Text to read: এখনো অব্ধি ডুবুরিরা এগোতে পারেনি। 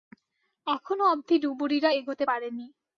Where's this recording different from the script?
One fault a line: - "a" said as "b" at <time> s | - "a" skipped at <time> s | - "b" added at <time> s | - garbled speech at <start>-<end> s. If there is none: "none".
none